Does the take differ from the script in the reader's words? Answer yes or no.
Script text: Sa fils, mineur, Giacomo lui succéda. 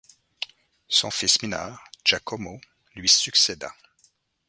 yes